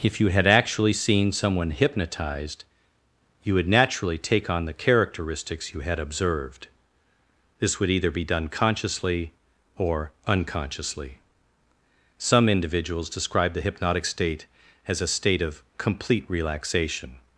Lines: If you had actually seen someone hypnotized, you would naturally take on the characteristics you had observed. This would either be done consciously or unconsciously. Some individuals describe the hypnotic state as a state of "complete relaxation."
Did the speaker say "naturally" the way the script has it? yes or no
yes